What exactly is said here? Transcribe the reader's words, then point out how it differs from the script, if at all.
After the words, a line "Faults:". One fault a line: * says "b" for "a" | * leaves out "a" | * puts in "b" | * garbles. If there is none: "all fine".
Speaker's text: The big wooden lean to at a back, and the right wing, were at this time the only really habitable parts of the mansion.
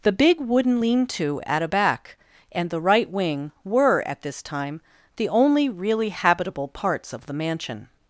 The big wooden lean to at a back, and the right wing, were at this time the only really habitable parts of the mansion.
Faults:
all fine